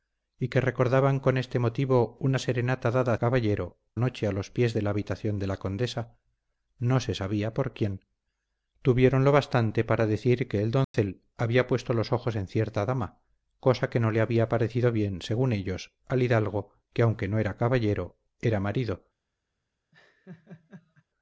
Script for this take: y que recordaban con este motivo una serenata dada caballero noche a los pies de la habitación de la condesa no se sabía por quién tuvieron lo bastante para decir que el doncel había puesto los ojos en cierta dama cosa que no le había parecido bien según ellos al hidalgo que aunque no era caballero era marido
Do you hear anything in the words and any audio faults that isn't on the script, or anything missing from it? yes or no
yes